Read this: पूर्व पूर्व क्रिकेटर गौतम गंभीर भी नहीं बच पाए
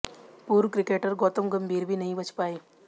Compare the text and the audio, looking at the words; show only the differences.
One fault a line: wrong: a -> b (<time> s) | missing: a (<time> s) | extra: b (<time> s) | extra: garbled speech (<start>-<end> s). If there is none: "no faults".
missing: पूर्व (0.7 s)